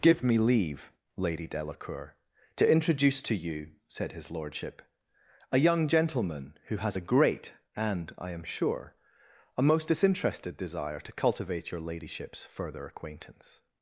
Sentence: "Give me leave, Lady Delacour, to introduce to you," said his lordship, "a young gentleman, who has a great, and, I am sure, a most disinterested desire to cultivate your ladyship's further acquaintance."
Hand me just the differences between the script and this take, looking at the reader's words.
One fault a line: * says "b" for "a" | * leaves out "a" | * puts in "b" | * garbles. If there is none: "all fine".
all fine